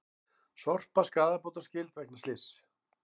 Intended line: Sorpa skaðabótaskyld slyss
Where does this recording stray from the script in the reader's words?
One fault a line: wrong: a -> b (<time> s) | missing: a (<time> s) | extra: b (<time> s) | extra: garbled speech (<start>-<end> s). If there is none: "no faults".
extra: vegna (2.0 s)